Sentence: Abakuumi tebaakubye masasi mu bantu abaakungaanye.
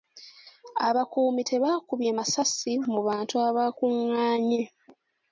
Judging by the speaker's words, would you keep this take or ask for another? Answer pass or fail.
pass